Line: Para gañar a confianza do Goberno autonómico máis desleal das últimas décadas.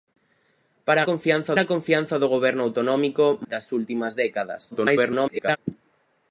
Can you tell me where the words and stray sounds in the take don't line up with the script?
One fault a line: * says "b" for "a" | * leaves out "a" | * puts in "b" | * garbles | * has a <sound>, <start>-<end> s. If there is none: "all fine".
* says "confianza" for "gañar"
* leaves out "máis desleal"
* garbles